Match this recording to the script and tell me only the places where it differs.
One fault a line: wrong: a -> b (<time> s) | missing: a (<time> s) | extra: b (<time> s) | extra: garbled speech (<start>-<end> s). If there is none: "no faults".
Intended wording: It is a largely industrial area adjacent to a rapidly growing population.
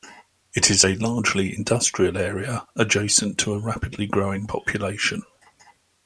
no faults